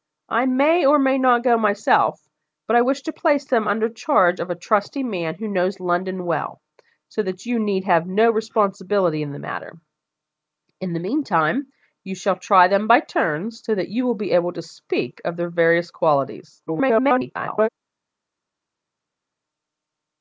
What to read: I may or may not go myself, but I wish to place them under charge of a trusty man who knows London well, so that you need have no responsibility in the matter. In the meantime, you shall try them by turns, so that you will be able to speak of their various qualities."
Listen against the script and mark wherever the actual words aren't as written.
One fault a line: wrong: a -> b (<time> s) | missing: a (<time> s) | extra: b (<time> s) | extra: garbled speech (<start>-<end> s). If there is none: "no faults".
extra: garbled speech (16.7-17.7 s)